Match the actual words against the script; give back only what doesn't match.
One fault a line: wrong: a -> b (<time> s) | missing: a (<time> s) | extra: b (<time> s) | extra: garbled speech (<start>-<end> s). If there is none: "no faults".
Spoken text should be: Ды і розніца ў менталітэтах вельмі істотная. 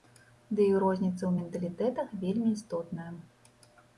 no faults